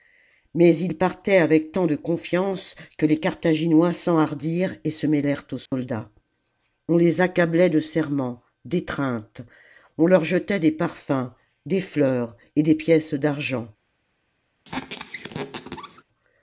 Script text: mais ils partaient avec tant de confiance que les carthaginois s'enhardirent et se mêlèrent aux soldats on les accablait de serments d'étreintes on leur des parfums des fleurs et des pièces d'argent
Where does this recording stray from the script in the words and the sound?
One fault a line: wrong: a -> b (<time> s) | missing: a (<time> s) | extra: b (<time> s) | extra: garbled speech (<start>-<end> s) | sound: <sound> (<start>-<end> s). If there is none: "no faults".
sound: dropout (5.7-5.7 s)
extra: jetait (10.2 s)
sound: squeak (14.6-16.0 s)